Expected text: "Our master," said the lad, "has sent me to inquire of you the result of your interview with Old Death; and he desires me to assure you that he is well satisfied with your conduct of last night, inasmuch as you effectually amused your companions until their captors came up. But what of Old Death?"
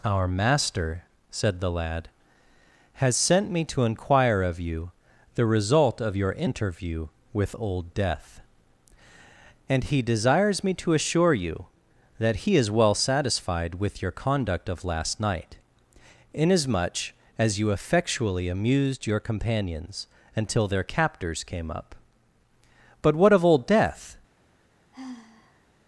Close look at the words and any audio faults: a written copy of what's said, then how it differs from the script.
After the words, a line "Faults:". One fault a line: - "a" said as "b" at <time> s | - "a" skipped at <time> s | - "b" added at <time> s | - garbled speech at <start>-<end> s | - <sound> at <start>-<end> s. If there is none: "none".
"Our master," said the lad, "has sent me to inquire of you the result of your interview with Old Death; and he desires me to assure you that he is well satisfied with your conduct of last night, inasmuch as you effectually amused your companions until their captors came up. But what of Old Death?"
Faults:
- sigh at 24.9-25.7 s